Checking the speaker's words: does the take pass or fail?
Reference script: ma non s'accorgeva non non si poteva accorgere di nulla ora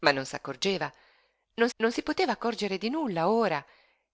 pass